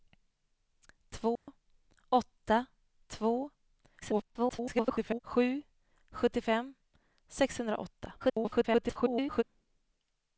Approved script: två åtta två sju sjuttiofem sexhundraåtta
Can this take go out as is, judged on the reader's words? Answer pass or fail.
fail